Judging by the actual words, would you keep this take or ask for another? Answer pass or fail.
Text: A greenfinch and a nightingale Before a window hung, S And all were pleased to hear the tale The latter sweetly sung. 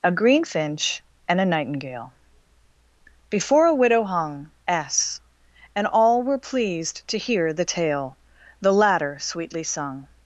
fail